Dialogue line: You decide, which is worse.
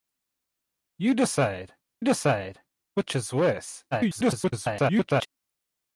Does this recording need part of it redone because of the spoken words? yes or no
yes